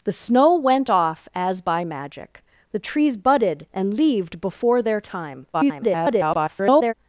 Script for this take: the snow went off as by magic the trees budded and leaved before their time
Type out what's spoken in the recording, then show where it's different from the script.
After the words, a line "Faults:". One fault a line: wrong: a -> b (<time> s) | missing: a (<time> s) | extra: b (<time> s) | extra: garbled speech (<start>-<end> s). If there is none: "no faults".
the snow went off as by magic the trees budded and leaved before their time [garbled]
Faults:
extra: garbled speech (5.5-6.9 s)